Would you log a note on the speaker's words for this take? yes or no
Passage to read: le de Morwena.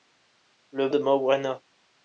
no